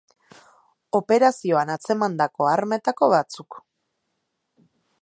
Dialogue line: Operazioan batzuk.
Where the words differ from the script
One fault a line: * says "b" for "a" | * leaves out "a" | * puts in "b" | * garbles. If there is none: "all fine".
* puts in "atzemandako armetako"